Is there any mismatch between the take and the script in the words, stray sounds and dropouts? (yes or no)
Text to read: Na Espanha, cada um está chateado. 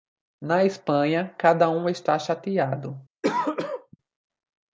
yes